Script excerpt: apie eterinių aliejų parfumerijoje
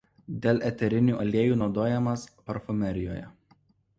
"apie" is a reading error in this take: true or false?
true